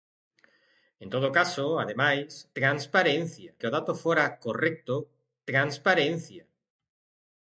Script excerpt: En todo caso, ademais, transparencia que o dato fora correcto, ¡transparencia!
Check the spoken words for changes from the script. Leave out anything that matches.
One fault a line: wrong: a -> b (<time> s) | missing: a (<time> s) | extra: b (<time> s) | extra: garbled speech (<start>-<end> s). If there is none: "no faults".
no faults